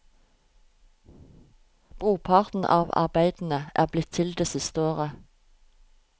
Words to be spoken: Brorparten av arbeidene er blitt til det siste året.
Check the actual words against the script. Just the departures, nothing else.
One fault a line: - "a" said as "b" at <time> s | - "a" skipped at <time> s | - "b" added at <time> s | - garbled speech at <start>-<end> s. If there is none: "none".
none